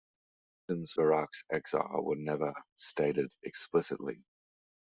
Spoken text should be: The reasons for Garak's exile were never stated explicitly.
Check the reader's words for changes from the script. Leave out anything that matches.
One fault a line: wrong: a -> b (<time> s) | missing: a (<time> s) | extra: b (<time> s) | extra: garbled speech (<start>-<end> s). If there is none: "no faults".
missing: for (0.9 s)